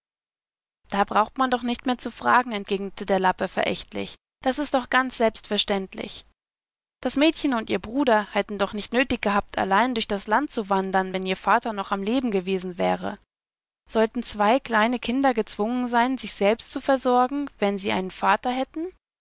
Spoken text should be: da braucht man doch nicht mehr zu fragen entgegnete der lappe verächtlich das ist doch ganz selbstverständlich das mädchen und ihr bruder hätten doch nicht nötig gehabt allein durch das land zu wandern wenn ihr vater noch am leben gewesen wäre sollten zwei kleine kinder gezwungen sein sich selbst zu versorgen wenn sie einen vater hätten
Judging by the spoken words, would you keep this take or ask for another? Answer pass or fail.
pass